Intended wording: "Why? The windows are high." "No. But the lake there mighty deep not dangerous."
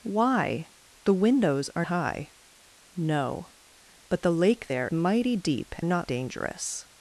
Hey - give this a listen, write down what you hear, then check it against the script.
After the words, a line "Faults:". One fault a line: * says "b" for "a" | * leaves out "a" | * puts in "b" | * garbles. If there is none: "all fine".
"Why? The windows are high." "No. But the lake there mighty deep not dangerous."
Faults:
all fine